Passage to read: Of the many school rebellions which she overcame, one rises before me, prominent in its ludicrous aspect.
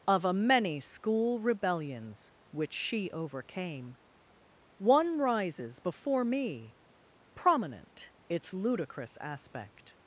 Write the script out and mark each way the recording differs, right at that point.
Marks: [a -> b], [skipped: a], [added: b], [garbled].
Of [the -> a] many school rebellions which she overcame, one rises before me, prominent [skipped: in] its ludicrous aspect.